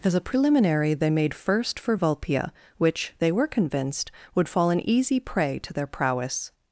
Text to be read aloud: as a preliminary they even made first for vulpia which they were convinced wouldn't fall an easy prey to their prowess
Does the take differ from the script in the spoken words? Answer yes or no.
yes